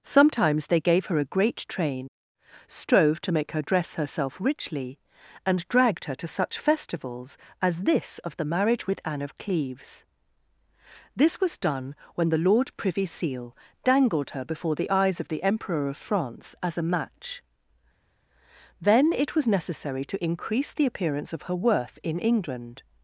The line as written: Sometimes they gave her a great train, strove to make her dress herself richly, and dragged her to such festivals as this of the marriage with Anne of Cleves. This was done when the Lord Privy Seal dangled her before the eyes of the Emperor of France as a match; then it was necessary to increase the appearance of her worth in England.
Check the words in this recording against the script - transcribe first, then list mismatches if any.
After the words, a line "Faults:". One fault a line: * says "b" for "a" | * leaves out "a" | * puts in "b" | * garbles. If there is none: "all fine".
Sometimes they gave her a great train, strove to make her dress herself richly, and dragged her to such festivals as this of the marriage with Anne of Cleves. This was done when the Lord Privy Seal dangled her before the eyes of the Emperor of France as a match; then it was necessary to increase the appearance of her worth in England.
Faults:
all fine